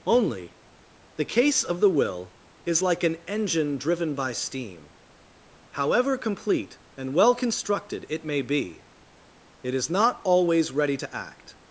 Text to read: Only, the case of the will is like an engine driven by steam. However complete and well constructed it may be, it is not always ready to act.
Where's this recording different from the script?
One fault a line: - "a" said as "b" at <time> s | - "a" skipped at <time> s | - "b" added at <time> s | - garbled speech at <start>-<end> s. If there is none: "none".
none